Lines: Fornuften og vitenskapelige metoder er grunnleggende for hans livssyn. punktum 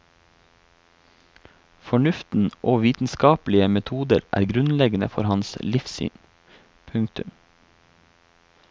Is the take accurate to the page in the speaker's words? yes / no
yes